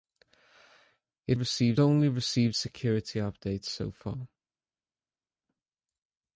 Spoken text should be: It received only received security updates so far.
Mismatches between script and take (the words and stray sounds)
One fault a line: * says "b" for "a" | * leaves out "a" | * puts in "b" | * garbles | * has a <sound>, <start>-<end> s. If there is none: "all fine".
all fine